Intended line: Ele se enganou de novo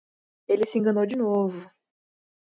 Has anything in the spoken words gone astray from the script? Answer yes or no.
no